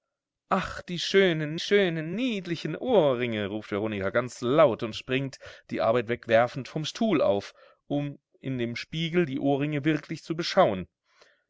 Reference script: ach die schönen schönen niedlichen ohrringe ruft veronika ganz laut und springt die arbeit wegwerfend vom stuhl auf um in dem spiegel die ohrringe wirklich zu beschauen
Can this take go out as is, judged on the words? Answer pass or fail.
pass